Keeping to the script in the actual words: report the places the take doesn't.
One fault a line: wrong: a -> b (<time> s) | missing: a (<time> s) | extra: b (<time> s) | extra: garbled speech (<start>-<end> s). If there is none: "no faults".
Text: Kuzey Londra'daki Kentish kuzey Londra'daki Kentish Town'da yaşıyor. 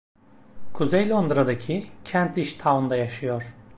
missing: kuzey Londra'daki Kentish (2.5 s)